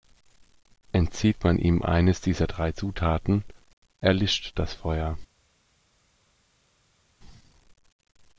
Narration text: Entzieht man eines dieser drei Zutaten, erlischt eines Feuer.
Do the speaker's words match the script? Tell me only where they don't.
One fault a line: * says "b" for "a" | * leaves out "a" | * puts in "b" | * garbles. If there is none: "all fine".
* puts in "ihm"
* says "das" for "eines"